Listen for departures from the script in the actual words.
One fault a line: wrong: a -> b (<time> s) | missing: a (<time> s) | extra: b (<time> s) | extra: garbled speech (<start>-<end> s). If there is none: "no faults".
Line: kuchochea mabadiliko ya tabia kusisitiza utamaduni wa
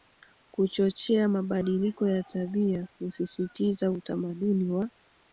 no faults